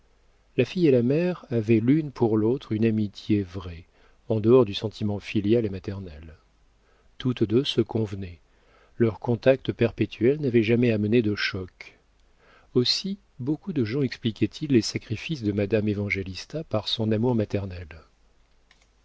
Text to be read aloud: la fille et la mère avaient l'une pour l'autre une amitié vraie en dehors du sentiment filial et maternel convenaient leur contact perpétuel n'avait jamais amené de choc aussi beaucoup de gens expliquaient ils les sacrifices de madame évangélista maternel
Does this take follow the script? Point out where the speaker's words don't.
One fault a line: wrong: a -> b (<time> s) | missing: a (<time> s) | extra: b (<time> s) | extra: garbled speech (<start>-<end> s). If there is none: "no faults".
extra: toutes deux se (7.2 s)
extra: par son amour (16.6 s)